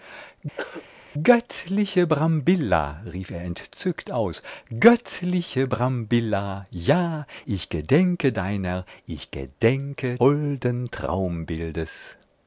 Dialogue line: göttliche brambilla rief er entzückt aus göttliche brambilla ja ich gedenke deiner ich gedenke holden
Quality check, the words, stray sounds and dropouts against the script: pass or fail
fail